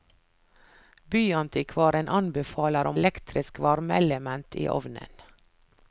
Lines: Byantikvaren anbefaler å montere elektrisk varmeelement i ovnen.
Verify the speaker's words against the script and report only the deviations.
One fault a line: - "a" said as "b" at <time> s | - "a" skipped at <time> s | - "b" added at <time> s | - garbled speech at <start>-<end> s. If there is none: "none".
- "montere" skipped at 3.0 s